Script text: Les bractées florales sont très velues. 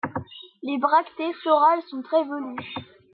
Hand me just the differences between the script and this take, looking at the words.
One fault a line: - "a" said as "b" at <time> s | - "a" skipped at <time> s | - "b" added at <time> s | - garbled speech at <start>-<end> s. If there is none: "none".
none